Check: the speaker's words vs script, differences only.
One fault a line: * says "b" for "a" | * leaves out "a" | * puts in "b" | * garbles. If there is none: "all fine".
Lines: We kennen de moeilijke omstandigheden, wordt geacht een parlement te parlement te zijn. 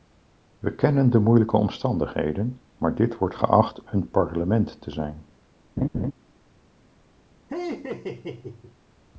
* puts in "maar dit"
* leaves out "parlement te"